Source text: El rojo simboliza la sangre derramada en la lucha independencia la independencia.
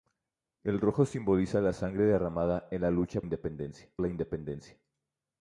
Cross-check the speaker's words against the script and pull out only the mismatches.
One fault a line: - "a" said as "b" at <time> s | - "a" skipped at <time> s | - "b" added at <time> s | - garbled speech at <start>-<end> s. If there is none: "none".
none